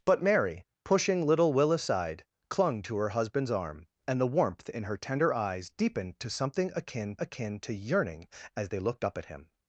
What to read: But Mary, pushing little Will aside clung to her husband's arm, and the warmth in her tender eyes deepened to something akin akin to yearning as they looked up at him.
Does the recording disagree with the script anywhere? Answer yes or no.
no